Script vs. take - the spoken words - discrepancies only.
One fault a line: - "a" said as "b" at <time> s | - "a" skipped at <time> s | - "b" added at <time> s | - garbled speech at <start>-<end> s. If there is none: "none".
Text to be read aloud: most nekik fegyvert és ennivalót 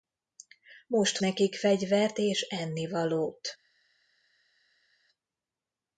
none